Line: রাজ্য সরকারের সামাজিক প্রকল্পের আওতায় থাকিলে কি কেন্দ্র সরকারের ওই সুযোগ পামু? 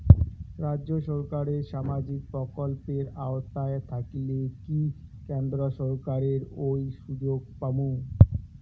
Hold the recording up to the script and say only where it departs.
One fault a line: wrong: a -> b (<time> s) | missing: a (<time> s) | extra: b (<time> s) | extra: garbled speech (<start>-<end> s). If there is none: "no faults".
no faults